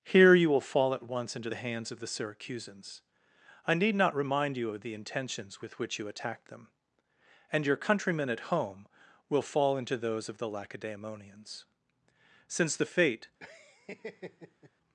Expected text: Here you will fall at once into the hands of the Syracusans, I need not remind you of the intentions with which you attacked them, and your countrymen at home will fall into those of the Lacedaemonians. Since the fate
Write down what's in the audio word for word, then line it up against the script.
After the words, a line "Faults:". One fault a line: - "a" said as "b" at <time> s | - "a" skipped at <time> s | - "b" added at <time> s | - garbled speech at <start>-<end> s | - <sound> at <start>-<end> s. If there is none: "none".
Here you will fall at once into the hands of the Syracusans, I need not remind you of the intentions with which you attacked them, and your countrymen at home will fall into those of the Lacedaemonians. Since the fate
Faults:
- laugh at 13.4-14.7 s